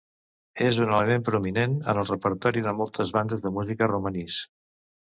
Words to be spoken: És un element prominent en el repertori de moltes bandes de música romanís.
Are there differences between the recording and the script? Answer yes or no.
no